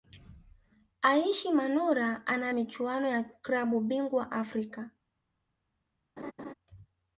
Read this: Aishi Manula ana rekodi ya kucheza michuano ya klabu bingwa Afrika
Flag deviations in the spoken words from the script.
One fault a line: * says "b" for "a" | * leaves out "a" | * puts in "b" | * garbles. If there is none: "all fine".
* leaves out "rekodi ya kucheza"